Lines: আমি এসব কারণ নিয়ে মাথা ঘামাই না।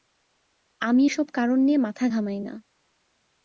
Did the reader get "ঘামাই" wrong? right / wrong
right